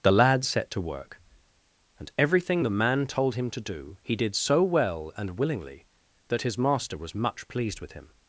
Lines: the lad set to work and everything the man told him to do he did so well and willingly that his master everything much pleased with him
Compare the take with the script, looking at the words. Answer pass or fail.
fail